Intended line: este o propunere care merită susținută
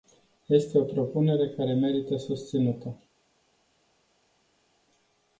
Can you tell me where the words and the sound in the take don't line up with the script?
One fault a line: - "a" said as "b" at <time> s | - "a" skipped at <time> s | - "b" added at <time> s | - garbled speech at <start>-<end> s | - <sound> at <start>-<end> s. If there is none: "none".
none